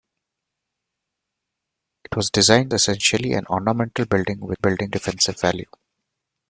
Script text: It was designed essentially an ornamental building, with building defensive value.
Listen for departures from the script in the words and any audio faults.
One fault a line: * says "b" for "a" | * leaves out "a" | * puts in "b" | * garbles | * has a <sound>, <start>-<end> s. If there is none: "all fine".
all fine